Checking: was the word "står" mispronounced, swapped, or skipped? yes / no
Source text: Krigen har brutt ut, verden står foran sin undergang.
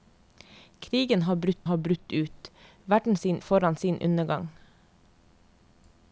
yes